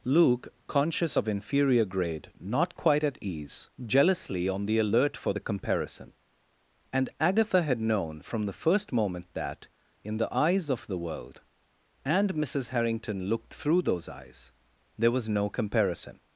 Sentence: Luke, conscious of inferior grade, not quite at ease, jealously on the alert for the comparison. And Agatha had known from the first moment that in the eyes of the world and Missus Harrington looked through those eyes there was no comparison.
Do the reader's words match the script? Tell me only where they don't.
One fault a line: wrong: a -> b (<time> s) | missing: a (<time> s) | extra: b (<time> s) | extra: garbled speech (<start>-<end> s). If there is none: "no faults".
no faults